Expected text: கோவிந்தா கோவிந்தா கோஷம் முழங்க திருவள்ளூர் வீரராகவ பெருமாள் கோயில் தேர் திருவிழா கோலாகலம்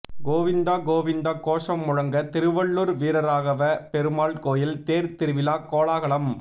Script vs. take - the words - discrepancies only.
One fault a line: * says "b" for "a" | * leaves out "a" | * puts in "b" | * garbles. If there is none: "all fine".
all fine